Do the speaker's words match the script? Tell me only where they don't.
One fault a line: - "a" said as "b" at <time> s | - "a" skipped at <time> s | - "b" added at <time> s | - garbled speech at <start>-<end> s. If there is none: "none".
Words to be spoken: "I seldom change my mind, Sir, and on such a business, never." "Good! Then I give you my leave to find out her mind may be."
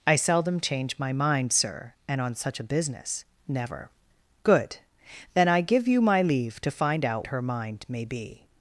none